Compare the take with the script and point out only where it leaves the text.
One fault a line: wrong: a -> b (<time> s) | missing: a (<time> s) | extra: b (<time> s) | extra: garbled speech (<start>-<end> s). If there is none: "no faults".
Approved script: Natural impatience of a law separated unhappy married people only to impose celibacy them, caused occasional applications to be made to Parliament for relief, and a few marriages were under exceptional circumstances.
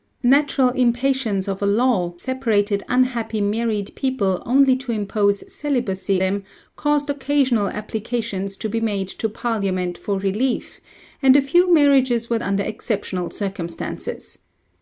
no faults